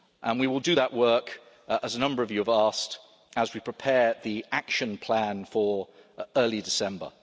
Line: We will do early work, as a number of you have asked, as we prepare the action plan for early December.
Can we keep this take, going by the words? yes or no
no